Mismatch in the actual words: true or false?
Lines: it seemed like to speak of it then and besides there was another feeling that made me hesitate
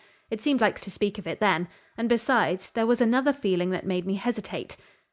false